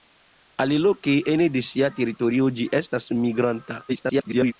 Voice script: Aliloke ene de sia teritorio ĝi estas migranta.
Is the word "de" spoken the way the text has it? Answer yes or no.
yes